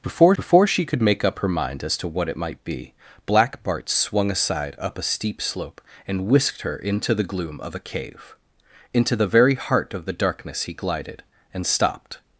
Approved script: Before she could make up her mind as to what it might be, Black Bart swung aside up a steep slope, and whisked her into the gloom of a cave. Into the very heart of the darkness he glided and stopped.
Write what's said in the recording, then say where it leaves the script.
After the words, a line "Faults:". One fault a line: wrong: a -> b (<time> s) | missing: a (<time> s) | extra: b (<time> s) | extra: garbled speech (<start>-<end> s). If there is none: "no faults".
Before before she could make up her mind as to what it might be, Black Bart swung aside up a steep slope, and whisked her into the gloom of a cave. Into the very heart of the darkness he glided and stopped.
Faults:
extra: before (0.4 s)